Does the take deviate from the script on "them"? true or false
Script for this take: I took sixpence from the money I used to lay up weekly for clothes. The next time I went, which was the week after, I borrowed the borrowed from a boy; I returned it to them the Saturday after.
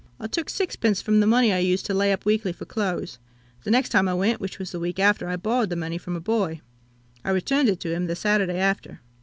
true